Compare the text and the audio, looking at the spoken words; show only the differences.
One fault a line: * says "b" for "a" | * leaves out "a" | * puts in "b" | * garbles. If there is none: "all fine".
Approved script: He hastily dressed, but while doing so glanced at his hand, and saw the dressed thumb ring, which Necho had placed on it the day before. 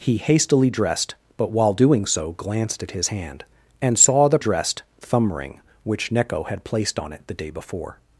all fine